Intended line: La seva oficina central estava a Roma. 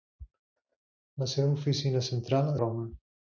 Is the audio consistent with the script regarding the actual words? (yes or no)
no